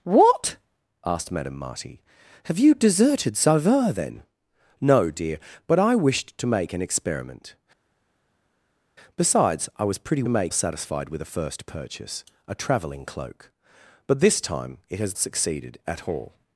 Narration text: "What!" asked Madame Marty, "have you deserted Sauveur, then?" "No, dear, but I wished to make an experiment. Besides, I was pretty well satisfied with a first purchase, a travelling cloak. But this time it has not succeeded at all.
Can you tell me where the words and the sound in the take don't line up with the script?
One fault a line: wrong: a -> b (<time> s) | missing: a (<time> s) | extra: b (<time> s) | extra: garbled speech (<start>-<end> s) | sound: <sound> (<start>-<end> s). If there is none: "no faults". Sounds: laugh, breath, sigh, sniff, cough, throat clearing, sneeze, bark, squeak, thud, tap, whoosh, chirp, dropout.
wrong: well -> make (10.3 s)
missing: not (15.2 s)